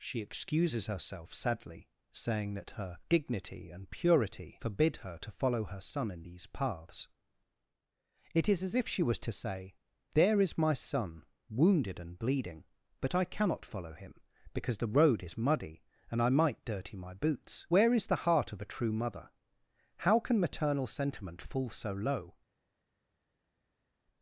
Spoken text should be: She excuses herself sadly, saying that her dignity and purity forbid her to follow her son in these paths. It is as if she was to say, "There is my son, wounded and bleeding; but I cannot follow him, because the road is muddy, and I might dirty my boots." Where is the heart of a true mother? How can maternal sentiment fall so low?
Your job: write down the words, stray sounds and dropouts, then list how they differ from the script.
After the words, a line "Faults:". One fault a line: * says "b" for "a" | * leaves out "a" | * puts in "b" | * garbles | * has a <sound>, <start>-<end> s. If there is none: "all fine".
She excuses herself sadly, saying that her dignity and purity forbid her to follow her son in these paths. It is as if she was to say, "There is my son, wounded and bleeding; but I cannot follow him, because the road is muddy, and I might dirty my boots." Where is the heart of a true mother? How can maternal sentiment fall so low?
Faults:
all fine